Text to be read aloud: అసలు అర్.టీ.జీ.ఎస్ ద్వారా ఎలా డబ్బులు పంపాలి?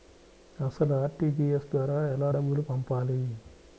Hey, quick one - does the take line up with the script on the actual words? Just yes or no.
yes